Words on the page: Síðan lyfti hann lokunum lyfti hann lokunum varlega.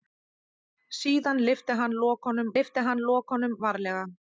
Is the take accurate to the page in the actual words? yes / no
yes